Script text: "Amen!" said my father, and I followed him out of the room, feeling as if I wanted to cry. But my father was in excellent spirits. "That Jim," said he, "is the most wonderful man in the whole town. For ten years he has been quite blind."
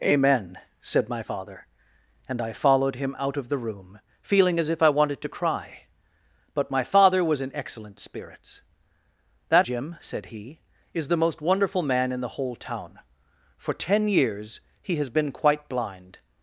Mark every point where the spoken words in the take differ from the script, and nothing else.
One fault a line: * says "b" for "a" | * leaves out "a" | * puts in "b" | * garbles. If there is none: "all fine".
all fine